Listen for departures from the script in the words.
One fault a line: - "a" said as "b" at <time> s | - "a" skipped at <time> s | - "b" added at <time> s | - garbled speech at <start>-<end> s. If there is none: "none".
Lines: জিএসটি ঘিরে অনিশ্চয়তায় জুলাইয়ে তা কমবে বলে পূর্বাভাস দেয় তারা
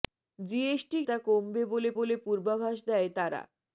- "ঘিরে অনিশ্চয়তায় জুলাইয়ে" skipped at 1.0 s
- "বলে" added at 2.0 s